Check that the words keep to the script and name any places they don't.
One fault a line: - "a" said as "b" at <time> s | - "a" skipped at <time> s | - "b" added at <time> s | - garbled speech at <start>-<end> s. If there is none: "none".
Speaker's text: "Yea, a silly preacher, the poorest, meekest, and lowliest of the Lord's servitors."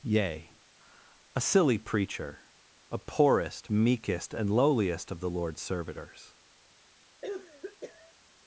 - "the" said as "a" at 2.9 s